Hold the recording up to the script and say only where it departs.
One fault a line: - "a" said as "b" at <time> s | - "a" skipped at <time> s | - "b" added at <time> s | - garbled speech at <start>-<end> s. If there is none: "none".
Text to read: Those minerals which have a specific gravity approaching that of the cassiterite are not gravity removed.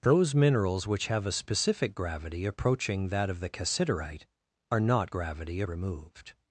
none